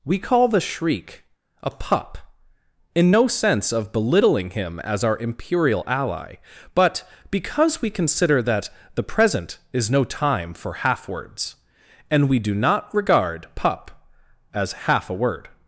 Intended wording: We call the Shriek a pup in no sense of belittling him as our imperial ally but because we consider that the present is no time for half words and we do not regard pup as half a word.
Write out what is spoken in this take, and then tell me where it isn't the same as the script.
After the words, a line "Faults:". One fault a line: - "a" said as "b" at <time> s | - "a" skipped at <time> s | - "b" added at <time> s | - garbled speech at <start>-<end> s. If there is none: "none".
We call the Shriek a pup in no sense of belittling him as our imperial ally but because we consider that the present is no time for half words and we do not regard pup as half a word.
Faults:
none